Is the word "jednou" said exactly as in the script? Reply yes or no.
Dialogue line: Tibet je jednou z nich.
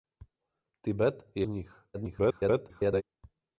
no